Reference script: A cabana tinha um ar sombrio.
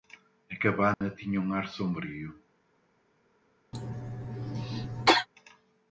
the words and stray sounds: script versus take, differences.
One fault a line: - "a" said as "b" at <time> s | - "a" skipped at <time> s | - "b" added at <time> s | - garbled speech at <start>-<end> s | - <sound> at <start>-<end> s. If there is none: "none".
- dropout at 0.9-1.0 s
- cough at 3.7-5.3 s